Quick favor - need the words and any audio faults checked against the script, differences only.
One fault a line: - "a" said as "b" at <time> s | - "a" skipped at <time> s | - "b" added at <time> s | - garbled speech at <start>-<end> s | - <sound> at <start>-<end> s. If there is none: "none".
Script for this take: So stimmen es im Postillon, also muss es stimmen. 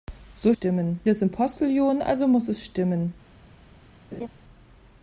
- laugh at 4.1-4.3 s